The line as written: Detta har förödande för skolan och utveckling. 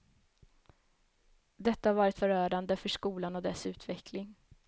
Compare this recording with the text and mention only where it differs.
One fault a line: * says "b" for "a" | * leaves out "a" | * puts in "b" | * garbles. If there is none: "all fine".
* puts in "varit"
* puts in "dess"